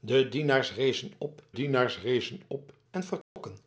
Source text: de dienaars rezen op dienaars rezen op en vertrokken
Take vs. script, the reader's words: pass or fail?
pass